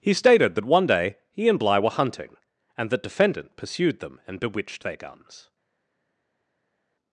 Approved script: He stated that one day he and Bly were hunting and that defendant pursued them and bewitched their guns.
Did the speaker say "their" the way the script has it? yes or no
yes